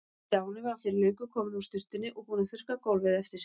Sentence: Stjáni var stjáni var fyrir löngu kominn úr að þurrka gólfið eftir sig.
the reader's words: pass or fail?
fail